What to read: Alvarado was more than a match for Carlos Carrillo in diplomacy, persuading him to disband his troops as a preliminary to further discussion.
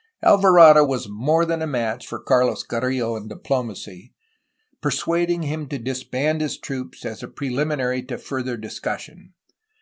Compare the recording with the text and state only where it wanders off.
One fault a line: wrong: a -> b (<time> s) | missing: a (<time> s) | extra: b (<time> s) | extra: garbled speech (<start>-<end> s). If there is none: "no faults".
no faults